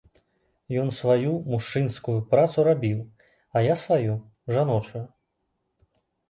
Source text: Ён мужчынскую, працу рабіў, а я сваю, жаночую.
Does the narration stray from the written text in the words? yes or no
yes